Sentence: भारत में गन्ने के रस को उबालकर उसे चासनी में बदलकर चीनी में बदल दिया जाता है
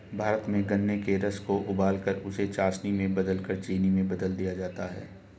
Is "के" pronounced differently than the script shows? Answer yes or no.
no